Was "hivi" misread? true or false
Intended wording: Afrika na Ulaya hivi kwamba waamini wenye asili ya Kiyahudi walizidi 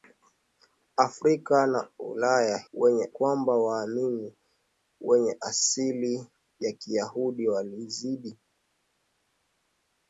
true